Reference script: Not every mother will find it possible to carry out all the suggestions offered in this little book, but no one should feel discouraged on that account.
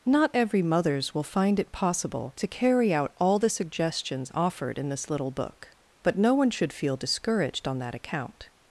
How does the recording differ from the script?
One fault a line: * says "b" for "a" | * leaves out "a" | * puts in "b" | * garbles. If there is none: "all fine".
* says "mothers" for "mother"